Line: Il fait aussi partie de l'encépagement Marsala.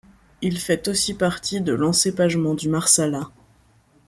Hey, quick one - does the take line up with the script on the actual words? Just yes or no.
no